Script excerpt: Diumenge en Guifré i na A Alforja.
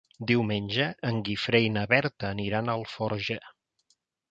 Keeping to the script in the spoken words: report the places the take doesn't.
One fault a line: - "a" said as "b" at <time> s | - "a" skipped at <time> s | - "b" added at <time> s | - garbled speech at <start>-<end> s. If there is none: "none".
- "Berta aniran" added at 1.9 s